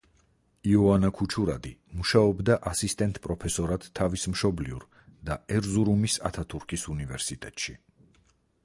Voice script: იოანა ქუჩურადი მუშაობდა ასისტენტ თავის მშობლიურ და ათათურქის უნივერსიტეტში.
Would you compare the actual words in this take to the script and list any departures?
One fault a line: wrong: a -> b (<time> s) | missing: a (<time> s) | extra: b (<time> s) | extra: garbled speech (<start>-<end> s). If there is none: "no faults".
extra: პროფესორად (3.3 s)
extra: ერზურუმის (5.6 s)